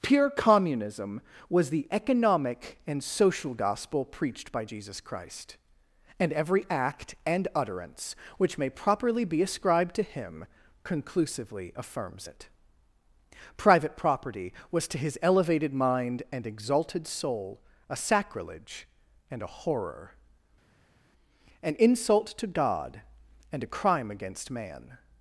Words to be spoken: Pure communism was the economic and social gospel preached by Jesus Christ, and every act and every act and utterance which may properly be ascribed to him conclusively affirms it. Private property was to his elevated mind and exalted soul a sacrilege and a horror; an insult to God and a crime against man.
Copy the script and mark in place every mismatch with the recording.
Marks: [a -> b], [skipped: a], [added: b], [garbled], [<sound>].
Pure communism was the economic and social gospel preached by Jesus Christ, and every act and [skipped: every act and] utterance which may properly be ascribed to him conclusively affirms it. Private property was to his elevated mind and exalted soul a sacrilege and a horror; an insult to God and a crime against man.